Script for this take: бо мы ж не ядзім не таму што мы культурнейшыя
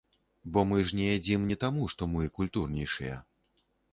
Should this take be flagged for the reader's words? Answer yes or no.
no